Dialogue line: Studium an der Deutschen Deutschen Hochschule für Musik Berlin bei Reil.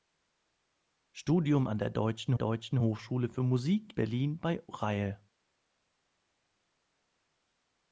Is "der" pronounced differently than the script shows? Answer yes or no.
no